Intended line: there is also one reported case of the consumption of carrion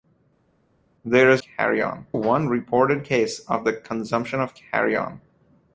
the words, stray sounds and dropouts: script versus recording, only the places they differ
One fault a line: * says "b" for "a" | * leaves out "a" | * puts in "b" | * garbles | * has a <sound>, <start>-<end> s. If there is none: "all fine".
* says "carrion" for "also"